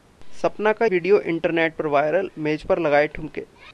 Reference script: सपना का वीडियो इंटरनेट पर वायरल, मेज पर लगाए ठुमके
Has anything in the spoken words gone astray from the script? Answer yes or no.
no